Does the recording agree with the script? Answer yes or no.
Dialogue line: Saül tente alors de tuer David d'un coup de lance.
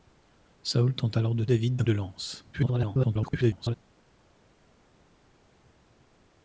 no